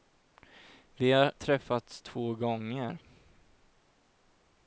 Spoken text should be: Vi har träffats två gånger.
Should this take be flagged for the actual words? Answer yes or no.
no